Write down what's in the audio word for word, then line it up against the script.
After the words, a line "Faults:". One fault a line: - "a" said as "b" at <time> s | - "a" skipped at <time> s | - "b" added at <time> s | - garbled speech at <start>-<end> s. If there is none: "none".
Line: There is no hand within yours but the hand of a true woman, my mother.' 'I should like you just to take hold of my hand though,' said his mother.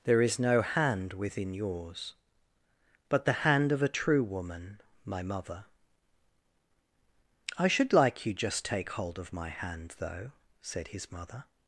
There is no hand within yours but the hand of a true woman, my mother.' 'I should like you just take hold of my hand though,' said his mother.
Faults:
- "to" skipped at 8.6 s